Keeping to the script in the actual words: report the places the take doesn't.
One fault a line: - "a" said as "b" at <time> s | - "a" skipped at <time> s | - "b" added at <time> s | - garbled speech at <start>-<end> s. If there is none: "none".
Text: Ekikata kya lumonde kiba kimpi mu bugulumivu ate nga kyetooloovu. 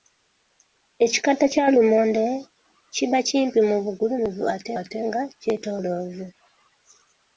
- "ate" added at 4.8 s